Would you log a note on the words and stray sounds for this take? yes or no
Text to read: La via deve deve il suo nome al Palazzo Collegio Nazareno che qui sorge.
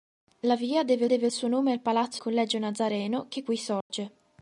yes